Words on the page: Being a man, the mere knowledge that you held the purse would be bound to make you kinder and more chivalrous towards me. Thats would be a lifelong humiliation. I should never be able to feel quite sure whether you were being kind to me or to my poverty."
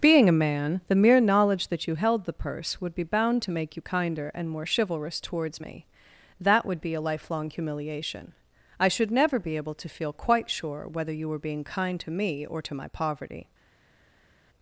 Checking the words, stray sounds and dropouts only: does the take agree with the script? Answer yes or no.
no